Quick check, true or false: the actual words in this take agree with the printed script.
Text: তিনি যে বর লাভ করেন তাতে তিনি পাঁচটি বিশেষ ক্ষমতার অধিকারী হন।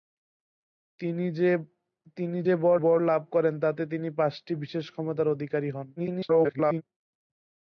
false